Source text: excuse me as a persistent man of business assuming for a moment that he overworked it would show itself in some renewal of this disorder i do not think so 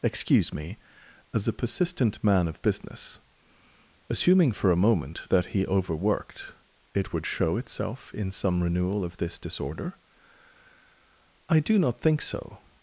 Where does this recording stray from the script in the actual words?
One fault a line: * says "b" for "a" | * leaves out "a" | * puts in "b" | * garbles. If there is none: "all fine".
all fine